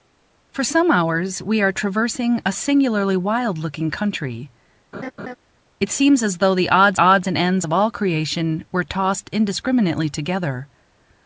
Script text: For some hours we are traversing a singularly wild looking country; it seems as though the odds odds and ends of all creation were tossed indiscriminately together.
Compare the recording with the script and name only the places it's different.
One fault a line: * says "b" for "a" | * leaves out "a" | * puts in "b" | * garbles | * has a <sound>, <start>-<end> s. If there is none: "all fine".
* has a laugh, 4.9-5.4 s